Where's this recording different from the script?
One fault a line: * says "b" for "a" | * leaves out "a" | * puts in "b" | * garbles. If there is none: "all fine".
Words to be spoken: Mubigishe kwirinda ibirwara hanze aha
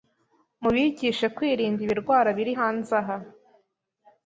* puts in "biri"